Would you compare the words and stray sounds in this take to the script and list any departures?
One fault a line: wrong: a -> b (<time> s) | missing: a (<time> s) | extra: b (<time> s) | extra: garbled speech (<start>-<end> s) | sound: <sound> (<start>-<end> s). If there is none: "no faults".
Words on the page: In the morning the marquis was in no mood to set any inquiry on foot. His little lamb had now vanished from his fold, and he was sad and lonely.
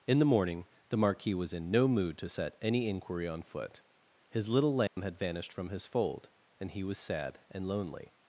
sound: dropout (4.9-5.0 s)
missing: now (5.2 s)